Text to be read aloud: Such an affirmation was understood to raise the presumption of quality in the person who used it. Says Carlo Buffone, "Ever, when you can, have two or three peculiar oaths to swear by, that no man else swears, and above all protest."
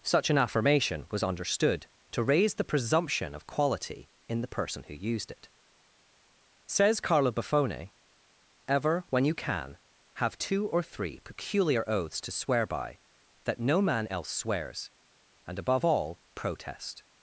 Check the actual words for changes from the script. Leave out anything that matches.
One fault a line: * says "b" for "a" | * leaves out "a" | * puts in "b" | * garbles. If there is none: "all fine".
all fine